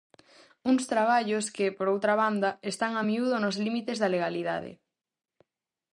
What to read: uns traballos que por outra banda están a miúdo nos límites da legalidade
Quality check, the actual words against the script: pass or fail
pass